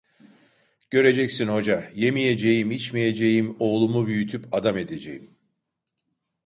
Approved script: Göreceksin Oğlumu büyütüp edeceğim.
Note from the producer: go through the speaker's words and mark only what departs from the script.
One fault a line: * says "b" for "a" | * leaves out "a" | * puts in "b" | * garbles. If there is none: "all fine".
* puts in "Hoca yemeyeceğim içmeyeceğim"
* puts in "adam"